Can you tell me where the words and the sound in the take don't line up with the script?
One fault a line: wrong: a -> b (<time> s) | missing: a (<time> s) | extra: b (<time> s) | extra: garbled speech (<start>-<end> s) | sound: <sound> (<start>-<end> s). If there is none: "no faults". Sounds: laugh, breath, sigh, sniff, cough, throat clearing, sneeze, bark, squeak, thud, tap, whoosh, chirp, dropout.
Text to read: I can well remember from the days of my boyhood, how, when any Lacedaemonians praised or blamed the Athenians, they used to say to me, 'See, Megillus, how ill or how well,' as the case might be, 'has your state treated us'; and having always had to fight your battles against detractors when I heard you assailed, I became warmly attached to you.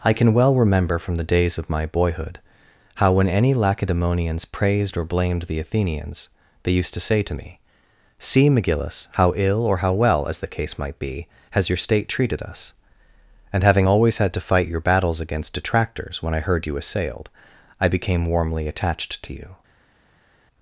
no faults